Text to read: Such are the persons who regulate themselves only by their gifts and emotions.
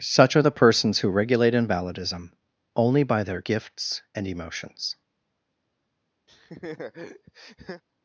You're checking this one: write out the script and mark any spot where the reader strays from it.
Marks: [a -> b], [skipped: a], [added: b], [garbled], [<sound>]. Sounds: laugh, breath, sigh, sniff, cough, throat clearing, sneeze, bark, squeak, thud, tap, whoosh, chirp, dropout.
Such are the persons who regulate [themselves -> invalidism] only by their gifts and emotions. [laugh]